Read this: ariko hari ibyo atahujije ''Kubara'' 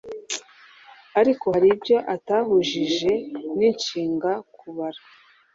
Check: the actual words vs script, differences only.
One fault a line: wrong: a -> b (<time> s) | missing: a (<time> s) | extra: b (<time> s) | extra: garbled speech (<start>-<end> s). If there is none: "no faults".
extra: n'inshinga (3.6 s)